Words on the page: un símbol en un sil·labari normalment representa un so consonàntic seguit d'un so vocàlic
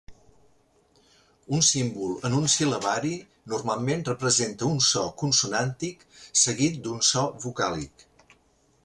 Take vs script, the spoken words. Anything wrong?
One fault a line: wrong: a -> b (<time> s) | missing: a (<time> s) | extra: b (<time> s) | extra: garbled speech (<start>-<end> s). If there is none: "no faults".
no faults